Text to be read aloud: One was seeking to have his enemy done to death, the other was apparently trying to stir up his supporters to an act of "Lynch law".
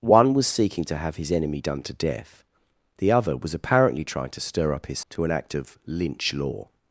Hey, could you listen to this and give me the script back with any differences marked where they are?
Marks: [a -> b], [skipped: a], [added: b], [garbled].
One was seeking to have his enemy done to death, the other was apparently trying to stir up his [skipped: supporters] to an act of "Lynch law".